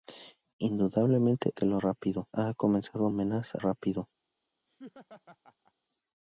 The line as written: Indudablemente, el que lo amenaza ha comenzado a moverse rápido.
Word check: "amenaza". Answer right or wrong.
wrong